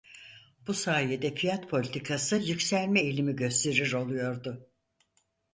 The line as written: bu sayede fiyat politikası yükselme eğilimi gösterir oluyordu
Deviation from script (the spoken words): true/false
false